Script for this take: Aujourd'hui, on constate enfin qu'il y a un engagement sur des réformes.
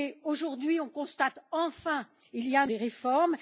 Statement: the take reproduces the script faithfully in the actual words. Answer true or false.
false